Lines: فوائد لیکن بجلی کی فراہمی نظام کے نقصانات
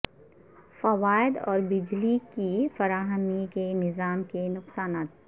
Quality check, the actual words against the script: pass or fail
fail